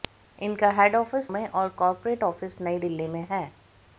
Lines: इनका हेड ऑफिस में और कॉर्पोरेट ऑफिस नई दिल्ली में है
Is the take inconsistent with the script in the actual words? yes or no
no